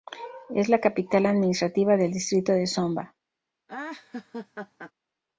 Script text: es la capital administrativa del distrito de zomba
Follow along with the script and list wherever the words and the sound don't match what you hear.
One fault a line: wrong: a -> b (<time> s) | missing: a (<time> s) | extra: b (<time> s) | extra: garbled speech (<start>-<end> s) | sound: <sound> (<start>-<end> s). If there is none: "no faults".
sound: laugh (3.7-4.9 s)